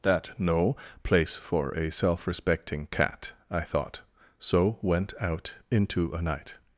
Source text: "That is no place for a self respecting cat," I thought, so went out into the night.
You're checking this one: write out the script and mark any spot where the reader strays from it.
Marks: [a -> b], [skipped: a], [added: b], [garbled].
"That [skipped: is] no place for a self respecting cat," I thought, so went out into [the -> a] night.